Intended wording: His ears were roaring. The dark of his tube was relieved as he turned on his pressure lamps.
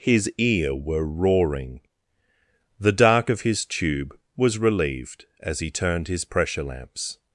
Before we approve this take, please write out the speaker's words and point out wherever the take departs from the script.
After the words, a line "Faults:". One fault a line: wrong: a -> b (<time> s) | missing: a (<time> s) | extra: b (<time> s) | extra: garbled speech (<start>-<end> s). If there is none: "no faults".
His ear were roaring. The dark of his tube was relieved as he turned his pressure lamps.
Faults:
wrong: ears -> ear (0.4 s)
missing: on (6.1 s)